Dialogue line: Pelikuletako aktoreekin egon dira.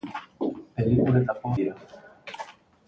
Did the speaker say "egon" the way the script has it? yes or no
no